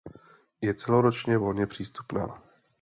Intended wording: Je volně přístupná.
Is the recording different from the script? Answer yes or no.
yes